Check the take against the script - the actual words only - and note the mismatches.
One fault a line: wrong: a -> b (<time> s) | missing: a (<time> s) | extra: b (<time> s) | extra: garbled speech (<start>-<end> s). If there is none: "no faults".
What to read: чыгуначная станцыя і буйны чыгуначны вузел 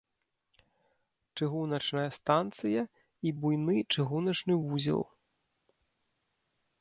no faults